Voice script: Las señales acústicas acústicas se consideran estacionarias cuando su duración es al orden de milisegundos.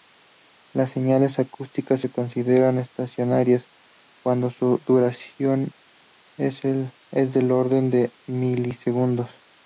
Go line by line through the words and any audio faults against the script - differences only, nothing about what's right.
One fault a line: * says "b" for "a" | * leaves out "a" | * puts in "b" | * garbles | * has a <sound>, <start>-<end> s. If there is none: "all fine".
* leaves out "acústicas"
* says "del" for "al"